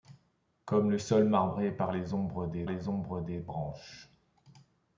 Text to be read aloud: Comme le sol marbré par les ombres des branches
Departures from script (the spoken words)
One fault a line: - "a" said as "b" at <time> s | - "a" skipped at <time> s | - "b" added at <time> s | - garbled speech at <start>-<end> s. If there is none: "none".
- "les ombres des" added at 2.7 s